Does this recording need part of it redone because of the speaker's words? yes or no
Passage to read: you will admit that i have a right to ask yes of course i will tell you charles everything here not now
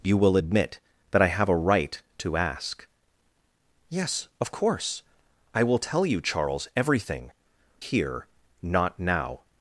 no